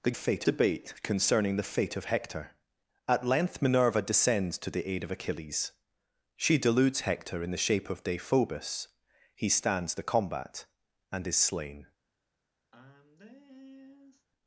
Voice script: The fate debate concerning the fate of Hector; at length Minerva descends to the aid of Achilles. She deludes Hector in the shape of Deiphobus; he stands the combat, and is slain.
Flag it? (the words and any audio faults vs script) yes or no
yes